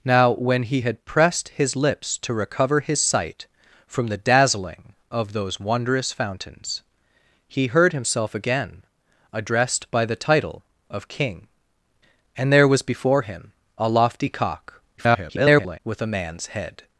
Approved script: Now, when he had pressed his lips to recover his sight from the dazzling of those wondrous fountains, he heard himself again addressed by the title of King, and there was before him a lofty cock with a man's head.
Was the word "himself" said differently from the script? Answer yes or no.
no